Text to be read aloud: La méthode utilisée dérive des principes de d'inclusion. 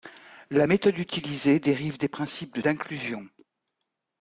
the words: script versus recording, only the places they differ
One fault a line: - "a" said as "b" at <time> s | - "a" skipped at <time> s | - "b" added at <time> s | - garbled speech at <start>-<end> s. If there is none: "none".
none